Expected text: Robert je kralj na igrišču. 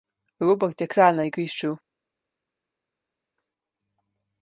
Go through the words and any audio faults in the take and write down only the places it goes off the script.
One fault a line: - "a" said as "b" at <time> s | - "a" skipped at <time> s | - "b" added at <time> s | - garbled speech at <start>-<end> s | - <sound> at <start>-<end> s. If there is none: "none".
none